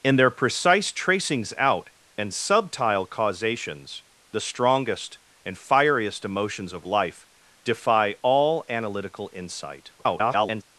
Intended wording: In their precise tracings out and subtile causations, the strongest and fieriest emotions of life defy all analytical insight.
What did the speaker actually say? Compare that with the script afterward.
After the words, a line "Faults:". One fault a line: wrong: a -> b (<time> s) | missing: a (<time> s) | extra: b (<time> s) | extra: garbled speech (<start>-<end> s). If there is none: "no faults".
In their precise tracings out and subtile causations, the strongest and fieriest emotions of life defy all analytical insight. [garbled]
Faults:
extra: garbled speech (10.0-10.6 s)